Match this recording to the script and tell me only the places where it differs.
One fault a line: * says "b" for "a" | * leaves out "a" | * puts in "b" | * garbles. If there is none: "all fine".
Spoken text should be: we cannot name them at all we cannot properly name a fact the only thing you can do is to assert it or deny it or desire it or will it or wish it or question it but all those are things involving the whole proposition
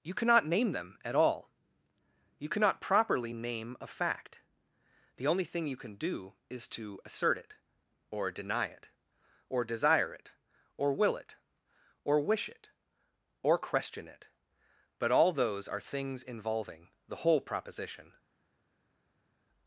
* says "you" for "we"
* says "you" for "we"